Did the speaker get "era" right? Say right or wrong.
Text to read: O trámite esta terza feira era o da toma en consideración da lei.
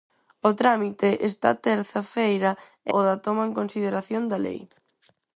wrong